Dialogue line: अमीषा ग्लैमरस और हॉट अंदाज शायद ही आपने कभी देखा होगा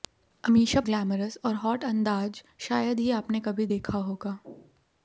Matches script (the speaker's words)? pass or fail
pass